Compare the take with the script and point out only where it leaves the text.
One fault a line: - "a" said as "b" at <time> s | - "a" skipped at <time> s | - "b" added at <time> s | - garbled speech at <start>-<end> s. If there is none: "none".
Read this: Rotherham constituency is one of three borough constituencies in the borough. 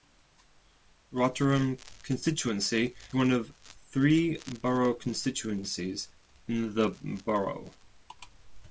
- "is" skipped at 2.9 s